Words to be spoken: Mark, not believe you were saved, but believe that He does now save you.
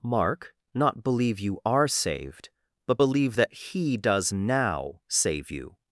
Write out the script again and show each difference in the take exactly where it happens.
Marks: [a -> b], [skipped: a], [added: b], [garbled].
Mark, not believe you [were -> are] saved, but believe that He does now save you.